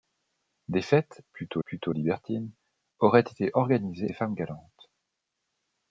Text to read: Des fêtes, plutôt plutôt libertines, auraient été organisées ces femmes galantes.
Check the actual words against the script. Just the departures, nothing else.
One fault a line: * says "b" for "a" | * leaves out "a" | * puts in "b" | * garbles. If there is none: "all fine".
all fine